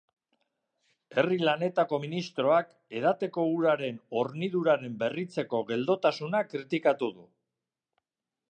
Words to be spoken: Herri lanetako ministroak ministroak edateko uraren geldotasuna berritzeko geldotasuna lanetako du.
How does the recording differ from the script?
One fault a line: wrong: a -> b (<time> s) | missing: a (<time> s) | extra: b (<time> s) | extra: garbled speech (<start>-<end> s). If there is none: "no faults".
missing: ministroak (2.7 s)
wrong: geldotasuna -> horniduraren (4.2 s)
wrong: lanetako -> kritikatu (6.5 s)